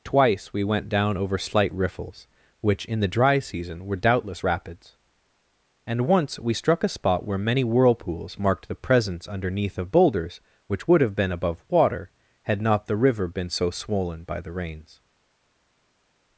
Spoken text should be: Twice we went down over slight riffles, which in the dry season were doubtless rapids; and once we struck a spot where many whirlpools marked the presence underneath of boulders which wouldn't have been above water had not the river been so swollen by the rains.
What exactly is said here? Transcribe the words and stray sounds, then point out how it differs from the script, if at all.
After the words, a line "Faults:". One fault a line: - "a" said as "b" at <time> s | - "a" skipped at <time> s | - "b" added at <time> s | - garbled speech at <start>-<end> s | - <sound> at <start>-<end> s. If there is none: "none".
Twice we went down over slight riffles, which in the dry season were doubtless rapids; and once we struck a spot where many whirlpools marked the presence underneath of boulders which would have been above water had not the river been so swollen by the rains.
Faults:
- "wouldn't" said as "would" at 10.9 s